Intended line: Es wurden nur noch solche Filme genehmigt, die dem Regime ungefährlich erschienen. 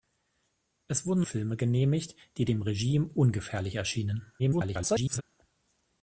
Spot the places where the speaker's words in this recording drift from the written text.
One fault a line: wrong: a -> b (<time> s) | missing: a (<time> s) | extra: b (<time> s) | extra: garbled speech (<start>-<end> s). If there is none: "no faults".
missing: nur noch solche (1.2 s)
extra: garbled speech (4.4-5.2 s)